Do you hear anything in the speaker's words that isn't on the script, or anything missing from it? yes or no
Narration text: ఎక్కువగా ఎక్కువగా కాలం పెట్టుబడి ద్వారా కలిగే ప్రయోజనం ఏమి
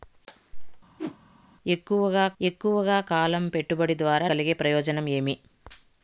no